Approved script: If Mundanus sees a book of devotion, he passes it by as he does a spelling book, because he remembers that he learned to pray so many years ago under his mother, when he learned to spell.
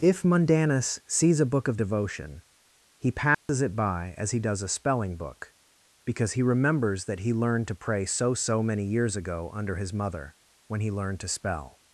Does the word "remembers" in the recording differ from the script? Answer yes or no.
no